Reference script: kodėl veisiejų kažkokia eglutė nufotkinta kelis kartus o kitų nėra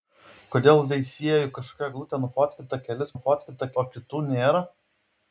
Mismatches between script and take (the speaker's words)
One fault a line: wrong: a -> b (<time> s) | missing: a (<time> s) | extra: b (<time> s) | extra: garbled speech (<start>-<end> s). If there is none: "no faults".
wrong: kartus -> nufotkinta (3.1 s)